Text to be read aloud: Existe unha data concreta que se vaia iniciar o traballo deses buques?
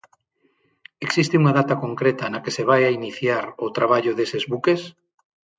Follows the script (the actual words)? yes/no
no